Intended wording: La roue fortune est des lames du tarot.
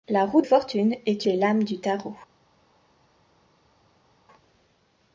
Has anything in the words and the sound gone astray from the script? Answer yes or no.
no